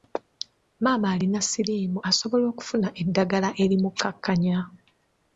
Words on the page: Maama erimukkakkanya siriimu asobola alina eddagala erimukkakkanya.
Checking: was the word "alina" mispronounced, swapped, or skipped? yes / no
yes